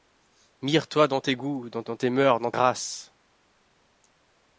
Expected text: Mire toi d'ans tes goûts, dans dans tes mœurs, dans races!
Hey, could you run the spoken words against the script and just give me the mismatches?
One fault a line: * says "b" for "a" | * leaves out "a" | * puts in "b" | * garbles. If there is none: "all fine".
all fine